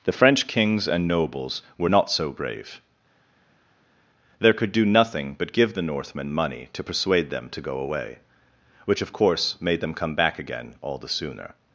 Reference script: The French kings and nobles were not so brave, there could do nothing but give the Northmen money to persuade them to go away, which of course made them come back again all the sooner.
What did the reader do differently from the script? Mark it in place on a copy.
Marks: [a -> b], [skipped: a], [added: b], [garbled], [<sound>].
The French kings and nobles were not so brave, there could do nothing but give the Northmen money to persuade them to go away, which of course made them come back again all the sooner.